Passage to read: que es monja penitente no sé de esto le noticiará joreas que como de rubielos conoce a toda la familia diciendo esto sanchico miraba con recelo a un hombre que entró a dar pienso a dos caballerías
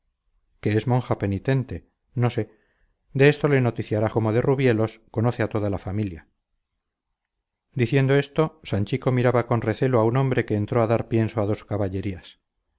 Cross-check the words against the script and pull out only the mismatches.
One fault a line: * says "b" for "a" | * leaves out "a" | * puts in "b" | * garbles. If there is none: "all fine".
* leaves out "joreas que"